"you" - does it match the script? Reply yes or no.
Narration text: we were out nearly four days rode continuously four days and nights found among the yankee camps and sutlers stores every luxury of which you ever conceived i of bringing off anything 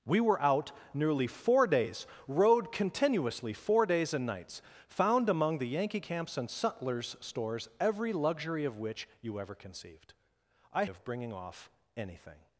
yes